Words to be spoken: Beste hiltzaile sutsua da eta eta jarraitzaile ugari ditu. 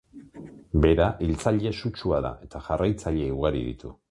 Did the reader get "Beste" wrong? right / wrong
wrong